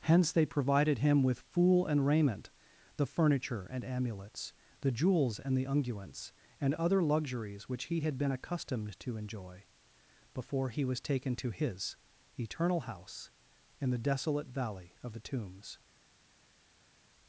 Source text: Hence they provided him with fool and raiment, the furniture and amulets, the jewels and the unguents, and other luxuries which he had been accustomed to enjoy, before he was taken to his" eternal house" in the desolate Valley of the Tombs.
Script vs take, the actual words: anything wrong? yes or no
no